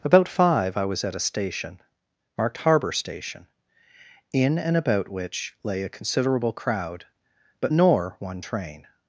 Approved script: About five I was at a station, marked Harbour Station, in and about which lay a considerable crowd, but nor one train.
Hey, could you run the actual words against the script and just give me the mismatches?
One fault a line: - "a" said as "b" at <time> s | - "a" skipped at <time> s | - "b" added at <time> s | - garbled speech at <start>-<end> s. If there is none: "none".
none